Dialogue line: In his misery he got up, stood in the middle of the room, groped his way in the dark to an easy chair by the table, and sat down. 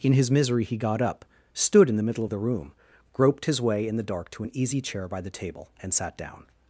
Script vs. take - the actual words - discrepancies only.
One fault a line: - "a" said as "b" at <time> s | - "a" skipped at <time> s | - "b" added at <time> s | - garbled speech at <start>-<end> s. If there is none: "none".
none